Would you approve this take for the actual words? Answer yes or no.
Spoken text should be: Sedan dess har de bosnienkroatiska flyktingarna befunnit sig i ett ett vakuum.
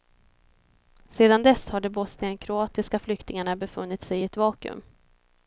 no